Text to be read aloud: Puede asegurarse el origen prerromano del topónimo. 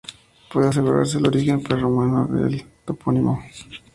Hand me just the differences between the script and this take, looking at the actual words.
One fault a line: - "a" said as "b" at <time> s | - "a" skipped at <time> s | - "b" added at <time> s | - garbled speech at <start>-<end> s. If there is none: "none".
none